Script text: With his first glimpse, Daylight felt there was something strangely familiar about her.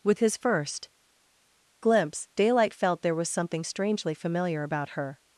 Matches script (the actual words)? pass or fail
pass